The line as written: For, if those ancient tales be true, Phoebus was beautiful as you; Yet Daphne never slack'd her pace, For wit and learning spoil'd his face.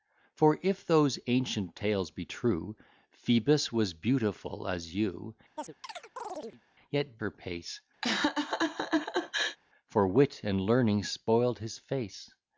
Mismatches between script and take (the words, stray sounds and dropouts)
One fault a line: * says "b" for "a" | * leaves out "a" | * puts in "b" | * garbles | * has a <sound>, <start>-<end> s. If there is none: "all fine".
* has a chirp, 5.6-6.6 s
* leaves out "Daphne never slack'd"
* has a laugh, 8.0-9.6 s